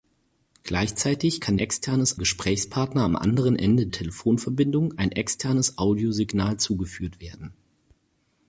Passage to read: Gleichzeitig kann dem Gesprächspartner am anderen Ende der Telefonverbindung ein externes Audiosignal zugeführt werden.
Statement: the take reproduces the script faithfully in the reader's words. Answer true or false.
false